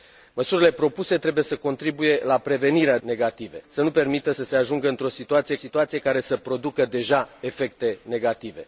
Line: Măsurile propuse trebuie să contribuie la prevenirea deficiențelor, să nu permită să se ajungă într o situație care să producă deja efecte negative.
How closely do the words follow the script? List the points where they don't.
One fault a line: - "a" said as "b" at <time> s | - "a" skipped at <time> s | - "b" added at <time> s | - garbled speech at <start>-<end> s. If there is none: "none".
- "deficiențelor" said as "negative" at 3.0 s
- "situație" added at 5.5 s